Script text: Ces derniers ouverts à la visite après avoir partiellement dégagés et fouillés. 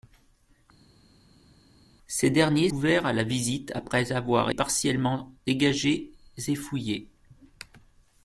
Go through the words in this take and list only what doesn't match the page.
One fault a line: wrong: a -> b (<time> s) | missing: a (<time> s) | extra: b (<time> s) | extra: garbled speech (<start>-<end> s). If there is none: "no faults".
no faults